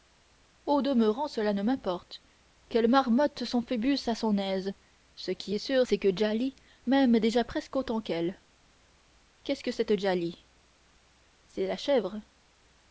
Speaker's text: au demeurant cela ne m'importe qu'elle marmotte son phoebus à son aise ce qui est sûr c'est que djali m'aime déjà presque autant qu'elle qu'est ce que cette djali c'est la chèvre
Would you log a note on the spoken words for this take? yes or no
no